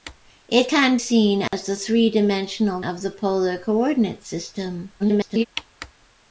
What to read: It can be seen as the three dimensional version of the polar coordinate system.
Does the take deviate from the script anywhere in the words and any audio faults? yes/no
yes